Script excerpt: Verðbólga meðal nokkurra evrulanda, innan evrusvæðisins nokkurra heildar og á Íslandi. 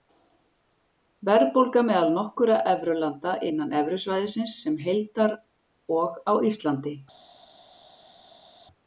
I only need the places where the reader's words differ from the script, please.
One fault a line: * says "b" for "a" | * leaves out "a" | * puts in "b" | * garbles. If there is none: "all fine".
* says "sem" for "nokkurra"